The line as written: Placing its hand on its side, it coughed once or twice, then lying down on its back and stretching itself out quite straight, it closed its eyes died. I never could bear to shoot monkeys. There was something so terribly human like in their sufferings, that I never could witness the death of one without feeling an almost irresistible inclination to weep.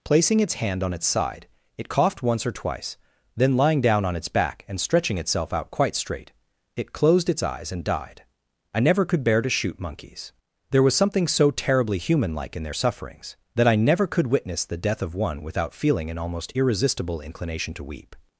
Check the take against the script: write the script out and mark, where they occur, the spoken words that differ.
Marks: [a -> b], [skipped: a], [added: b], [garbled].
Placing its hand on its side, it coughed once or twice, then lying down on its back and stretching itself out quite straight, it closed its eyes [added: and] died. I never could bear to shoot monkeys. There was something so terribly human like in their sufferings, that I never could witness the death of one without feeling an almost irresistible inclination to weep.